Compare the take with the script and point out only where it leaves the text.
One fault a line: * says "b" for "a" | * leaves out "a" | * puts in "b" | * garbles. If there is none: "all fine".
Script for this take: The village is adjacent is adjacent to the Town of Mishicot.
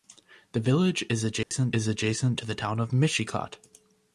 all fine